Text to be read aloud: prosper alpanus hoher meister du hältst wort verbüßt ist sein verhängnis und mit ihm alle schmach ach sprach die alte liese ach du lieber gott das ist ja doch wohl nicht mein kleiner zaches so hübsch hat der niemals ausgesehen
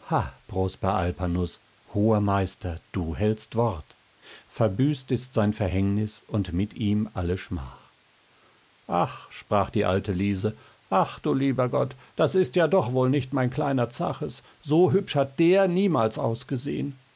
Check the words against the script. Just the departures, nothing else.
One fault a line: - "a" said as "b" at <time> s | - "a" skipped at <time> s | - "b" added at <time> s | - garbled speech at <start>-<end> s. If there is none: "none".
none